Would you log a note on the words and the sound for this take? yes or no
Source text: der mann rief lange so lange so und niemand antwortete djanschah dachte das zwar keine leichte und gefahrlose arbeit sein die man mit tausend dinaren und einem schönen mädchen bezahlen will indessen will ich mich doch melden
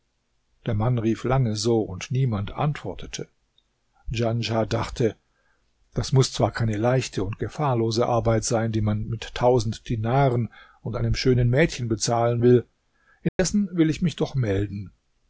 yes